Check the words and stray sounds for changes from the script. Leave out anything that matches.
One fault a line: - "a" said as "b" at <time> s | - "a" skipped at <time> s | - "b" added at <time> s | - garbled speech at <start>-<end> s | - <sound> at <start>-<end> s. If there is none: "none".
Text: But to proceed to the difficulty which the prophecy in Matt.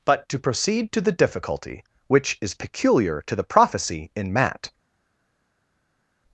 - "is peculiar to" added at 2.4 s